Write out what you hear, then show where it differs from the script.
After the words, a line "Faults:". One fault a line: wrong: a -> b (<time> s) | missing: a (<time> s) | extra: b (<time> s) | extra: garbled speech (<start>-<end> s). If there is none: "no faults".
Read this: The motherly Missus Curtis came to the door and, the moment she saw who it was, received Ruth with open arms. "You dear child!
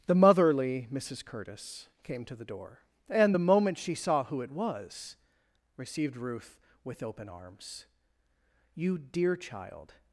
The motherly Missus Curtis came to the door and, the moment she saw who it was, received Ruth with open arms. "You dear child!
Faults:
no faults